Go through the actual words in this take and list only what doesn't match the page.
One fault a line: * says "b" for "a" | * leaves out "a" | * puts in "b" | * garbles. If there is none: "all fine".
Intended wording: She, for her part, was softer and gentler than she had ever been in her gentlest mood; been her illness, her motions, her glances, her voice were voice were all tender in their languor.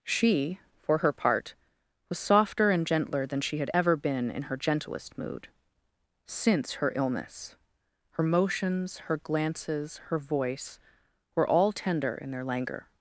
* says "since" for "been"
* leaves out "voice were"